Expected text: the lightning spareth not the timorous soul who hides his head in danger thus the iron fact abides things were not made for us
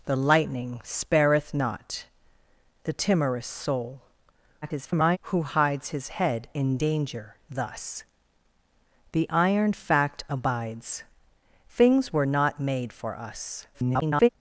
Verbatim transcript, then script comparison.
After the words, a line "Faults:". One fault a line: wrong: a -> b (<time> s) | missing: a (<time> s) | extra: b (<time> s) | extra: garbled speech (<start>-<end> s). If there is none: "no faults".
the lightning spareth not the timorous soul [garbled] who hides his head in danger thus the iron fact abides things were not made for us [garbled]
Faults:
extra: garbled speech (4.6-5.2 s)
extra: garbled speech (13.7-14.3 s)